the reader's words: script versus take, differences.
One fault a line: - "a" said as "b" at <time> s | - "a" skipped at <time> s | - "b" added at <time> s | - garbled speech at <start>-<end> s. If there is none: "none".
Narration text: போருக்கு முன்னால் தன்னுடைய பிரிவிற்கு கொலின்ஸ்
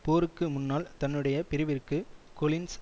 none